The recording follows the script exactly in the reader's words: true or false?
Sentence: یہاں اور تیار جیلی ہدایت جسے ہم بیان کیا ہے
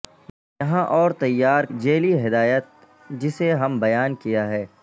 true